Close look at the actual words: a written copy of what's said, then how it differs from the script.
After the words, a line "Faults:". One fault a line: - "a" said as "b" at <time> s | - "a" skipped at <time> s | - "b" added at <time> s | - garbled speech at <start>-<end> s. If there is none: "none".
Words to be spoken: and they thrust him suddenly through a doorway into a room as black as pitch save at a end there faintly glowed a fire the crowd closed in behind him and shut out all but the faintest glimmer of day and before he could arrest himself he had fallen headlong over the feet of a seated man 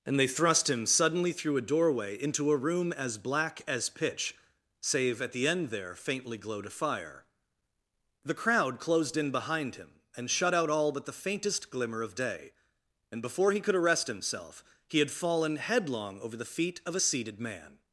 and they thrust him suddenly through a doorway into a room as black as pitch save at the end there faintly glowed a fire the crowd closed in behind him and shut out all but the faintest glimmer of day and before he could arrest himself he had fallen headlong over the feet of a seated man
Faults:
- "a" said as "the" at 5.3 s